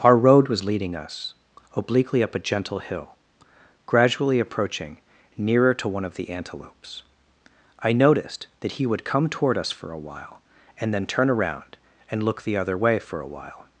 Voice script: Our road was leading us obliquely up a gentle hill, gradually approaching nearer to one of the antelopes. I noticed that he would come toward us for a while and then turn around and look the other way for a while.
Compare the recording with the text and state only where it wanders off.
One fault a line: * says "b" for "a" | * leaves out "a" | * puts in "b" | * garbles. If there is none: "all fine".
all fine